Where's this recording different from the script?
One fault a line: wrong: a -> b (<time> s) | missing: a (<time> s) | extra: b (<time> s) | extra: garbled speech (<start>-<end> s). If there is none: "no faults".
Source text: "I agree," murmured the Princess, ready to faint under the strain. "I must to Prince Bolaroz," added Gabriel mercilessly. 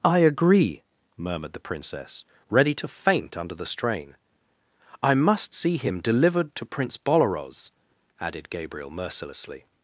extra: see him delivered (5.5 s)